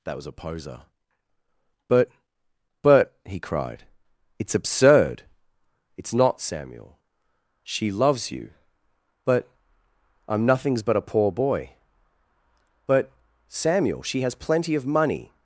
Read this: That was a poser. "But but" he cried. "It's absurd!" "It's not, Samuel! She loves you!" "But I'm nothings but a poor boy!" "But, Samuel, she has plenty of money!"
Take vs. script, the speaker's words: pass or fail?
pass